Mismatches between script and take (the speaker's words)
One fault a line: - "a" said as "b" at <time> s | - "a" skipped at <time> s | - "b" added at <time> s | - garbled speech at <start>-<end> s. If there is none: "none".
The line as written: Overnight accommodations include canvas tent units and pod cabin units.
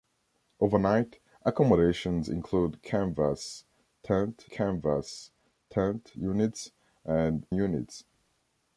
- "canvas tent" added at 4.5 s
- "pod cabin" skipped at 7.4 s